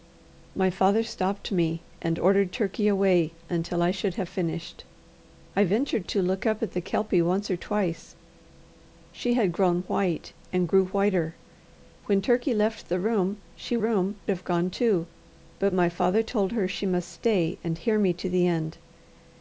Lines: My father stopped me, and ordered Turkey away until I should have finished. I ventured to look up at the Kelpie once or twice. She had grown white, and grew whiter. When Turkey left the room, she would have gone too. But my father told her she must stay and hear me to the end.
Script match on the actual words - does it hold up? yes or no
no